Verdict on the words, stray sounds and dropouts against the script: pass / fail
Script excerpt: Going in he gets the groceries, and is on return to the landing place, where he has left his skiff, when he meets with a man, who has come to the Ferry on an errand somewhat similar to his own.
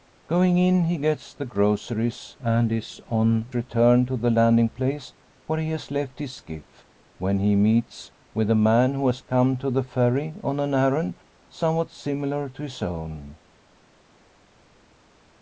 pass